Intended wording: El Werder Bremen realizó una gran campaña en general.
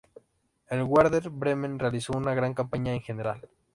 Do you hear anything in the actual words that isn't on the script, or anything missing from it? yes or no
no